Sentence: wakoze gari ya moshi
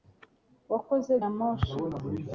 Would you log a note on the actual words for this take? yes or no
yes